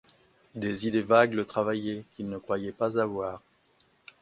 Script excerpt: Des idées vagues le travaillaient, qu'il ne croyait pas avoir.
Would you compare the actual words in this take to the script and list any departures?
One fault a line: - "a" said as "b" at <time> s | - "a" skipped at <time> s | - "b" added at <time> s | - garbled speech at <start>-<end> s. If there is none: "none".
none